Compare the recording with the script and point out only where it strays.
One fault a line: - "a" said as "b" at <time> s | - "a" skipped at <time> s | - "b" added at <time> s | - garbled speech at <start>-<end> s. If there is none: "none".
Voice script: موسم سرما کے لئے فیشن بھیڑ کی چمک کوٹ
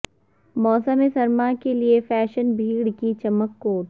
none